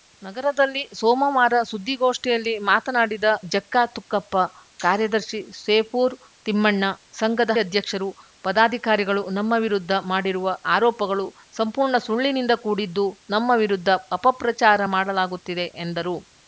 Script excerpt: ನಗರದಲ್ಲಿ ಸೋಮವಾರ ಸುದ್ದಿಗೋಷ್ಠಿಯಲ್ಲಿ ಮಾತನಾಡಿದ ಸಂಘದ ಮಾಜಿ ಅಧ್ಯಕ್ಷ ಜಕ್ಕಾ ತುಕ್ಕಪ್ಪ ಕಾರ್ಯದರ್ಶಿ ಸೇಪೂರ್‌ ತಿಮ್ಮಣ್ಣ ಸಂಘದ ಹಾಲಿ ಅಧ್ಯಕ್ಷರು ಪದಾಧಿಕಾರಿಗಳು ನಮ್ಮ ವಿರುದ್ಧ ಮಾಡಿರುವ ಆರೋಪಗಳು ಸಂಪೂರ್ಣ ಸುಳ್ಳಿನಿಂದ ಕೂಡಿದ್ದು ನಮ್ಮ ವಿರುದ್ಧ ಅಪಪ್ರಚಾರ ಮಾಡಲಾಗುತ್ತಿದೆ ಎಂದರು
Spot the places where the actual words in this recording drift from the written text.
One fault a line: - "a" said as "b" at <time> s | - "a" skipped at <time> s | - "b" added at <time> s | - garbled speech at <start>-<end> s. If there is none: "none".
- "ಸಂಘದ ಮಾಜಿ ಅಧ್ಯಕ್ಷ" skipped at 3.2 s
- "ಹಾಲಿ" skipped at 7.5 s